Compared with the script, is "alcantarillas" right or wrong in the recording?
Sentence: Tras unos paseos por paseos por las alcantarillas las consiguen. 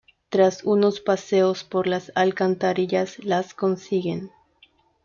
right